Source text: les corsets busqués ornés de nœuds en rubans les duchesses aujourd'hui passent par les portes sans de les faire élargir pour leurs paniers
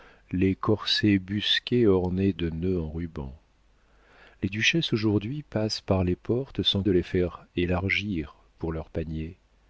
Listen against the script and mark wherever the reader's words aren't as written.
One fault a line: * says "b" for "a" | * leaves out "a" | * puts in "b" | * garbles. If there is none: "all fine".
all fine